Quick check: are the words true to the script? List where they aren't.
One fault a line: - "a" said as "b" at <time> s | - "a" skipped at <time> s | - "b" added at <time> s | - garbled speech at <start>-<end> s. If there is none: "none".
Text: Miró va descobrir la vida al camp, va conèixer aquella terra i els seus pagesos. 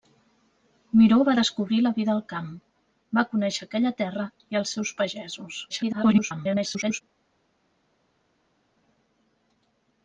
- garbled speech at 5.7-7.0 s